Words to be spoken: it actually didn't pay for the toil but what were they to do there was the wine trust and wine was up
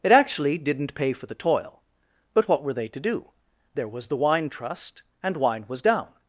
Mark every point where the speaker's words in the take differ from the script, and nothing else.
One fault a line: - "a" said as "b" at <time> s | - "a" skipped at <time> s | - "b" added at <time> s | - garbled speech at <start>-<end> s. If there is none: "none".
- "up" said as "down" at 5.8 s